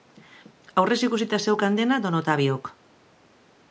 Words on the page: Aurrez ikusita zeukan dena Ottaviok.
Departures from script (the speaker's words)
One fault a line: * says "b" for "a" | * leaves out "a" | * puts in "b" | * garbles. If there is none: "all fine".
* puts in "don"